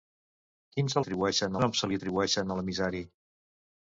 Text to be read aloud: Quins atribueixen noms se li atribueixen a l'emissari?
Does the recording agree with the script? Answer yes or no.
yes